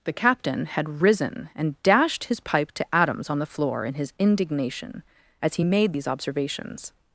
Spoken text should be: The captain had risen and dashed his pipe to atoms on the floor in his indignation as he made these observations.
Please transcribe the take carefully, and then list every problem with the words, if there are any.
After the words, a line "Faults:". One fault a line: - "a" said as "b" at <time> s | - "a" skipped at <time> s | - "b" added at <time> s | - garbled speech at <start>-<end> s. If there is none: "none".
The captain had risen and dashed his pipe to atoms on the floor in his indignation as he made these observations.
Faults:
none